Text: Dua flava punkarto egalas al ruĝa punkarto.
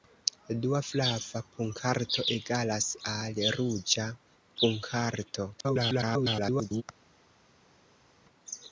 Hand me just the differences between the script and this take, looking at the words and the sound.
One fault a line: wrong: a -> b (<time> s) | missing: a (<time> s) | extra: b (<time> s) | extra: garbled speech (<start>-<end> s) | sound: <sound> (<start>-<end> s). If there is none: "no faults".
extra: garbled speech (5.6-6.8 s)